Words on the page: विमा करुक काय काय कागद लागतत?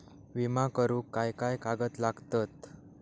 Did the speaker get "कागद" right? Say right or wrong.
right